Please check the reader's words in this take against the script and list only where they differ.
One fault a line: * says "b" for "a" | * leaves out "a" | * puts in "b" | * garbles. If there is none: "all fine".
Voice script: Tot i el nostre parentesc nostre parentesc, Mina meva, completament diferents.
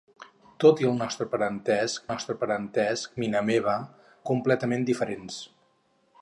all fine